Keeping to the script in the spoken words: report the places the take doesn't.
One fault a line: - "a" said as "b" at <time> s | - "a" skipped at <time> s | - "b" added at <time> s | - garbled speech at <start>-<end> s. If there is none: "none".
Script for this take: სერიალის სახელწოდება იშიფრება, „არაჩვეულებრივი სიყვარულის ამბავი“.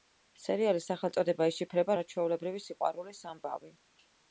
none